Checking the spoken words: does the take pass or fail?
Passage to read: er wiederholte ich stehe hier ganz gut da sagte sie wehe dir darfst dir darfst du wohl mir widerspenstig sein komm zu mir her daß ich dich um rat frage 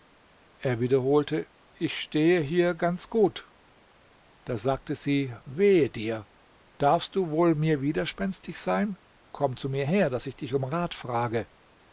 fail